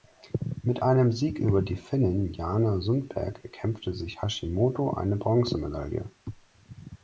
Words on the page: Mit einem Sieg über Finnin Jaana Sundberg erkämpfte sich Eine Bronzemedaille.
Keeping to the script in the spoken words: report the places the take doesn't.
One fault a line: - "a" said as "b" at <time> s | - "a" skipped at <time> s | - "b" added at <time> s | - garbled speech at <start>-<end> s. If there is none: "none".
- "die" added at 1.6 s
- "Hashimoto" added at 4.2 s